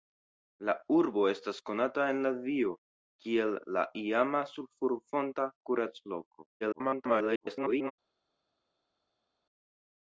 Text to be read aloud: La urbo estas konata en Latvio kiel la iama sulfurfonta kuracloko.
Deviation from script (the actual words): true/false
true